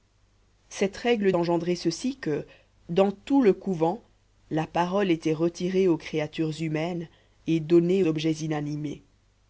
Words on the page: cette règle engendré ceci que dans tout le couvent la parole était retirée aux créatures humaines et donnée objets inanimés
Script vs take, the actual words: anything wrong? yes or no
no